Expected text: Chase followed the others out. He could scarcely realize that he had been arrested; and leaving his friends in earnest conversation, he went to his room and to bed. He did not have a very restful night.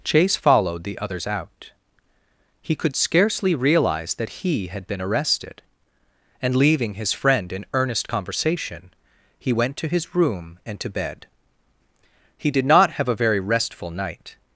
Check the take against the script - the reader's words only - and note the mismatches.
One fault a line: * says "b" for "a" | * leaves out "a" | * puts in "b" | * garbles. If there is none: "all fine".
* says "friend" for "friends"